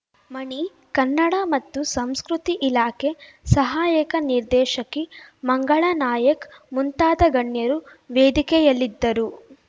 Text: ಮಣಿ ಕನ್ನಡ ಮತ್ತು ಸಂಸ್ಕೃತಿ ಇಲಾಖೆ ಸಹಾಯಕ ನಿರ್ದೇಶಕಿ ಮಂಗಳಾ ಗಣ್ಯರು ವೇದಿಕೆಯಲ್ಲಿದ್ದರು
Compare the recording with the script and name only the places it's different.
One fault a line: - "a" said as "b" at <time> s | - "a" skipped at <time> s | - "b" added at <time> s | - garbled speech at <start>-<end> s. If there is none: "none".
- "ನಾಯಕ್ ಮುಂತಾದ" added at 6.0 s